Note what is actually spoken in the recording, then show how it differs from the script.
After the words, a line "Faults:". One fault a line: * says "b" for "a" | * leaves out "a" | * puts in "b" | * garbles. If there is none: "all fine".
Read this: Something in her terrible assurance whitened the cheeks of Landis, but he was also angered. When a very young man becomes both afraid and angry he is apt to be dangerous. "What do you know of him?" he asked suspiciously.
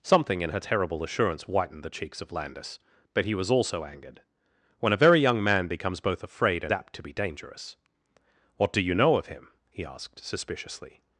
Something in her terrible assurance whitened the cheeks of Landis, but he was also angered. When a very young man becomes both afraid and apt to be dangerous. "What do you know of him?" he asked suspiciously.
Faults:
* leaves out "angry he is"